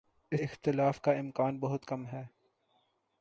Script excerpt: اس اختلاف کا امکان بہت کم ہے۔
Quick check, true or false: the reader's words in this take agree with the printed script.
true